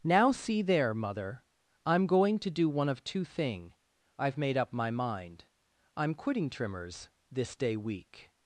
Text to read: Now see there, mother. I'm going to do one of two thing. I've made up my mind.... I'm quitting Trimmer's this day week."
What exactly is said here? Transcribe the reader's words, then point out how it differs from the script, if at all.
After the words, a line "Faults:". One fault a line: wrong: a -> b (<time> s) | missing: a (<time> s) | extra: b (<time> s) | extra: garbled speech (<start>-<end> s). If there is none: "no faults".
Now see there, mother. I'm going to do one of two thing. I've made up my mind.... I'm quitting Trimmer's this day week."
Faults:
no faults